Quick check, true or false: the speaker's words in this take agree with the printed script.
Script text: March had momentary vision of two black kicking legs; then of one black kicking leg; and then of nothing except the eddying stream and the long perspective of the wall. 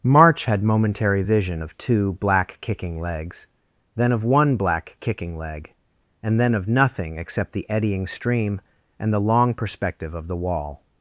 true